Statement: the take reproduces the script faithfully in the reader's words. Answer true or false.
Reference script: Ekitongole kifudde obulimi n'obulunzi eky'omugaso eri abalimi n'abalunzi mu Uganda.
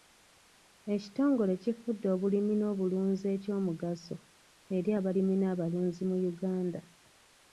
true